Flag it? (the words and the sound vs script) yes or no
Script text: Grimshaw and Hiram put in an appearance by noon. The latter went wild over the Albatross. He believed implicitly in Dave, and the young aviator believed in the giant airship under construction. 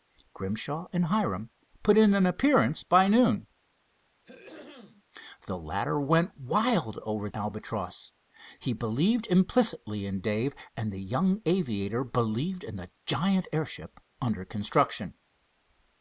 yes